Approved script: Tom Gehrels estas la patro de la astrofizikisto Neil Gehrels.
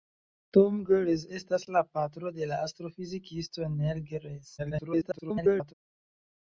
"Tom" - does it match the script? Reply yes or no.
yes